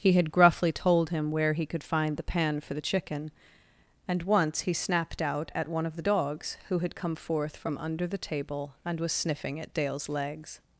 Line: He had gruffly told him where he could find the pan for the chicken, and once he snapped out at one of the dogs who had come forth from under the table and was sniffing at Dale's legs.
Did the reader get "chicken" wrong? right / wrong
right